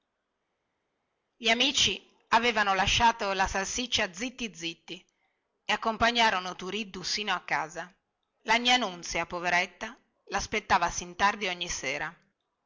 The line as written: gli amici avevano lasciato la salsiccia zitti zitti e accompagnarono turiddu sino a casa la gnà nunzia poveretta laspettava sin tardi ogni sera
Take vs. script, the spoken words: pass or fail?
pass